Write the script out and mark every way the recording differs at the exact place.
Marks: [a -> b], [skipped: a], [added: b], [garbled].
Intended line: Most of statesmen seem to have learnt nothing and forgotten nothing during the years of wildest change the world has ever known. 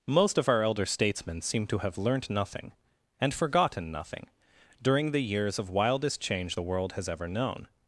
Most of [added: our elder] statesmen seem to have learnt nothing and forgotten nothing during the years of wildest change the world has ever known.